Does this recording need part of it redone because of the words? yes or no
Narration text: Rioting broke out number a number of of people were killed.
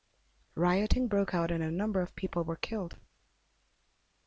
yes